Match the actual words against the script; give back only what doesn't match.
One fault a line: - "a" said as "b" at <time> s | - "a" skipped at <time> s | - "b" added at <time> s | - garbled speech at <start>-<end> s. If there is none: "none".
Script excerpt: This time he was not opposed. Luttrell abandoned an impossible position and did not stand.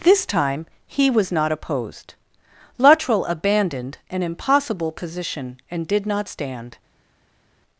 none